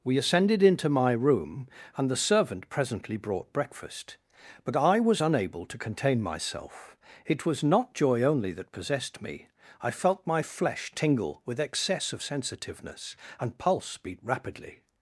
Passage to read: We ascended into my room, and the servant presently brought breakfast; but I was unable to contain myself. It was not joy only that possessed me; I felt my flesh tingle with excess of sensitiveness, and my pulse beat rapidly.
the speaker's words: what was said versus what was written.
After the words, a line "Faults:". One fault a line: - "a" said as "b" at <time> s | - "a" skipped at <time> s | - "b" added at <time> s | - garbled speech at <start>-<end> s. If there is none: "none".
We ascended into my room, and the servant presently brought breakfast; but I was unable to contain myself. It was not joy only that possessed me; I felt my flesh tingle with excess of sensitiveness, and pulse beat rapidly.
Faults:
- "my" skipped at 13.6 s